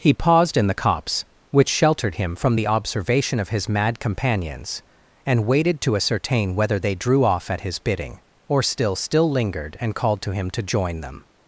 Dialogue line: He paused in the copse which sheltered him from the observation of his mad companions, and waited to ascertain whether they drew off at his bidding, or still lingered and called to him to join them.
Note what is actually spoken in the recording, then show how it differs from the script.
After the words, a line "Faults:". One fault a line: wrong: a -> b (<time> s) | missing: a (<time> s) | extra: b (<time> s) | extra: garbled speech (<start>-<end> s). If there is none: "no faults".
He paused in the copse which sheltered him from the observation of his mad companions, and waited to ascertain whether they drew off at his bidding, or still still lingered and called to him to join them.
Faults:
extra: still (8.9 s)